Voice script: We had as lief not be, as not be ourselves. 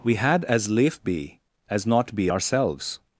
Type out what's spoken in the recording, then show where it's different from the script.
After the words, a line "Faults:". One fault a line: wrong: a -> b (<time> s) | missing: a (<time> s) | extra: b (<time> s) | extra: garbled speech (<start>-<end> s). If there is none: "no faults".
We had as lief be, as not be ourselves.
Faults:
missing: not (1.0 s)